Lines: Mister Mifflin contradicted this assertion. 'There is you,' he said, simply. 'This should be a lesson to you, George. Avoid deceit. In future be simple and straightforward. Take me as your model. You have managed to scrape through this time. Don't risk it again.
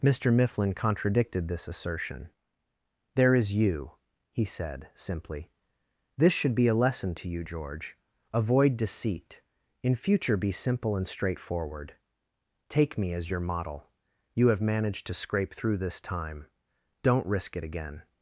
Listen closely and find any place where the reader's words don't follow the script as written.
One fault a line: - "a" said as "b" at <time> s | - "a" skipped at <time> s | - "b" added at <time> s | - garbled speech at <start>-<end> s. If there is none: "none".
none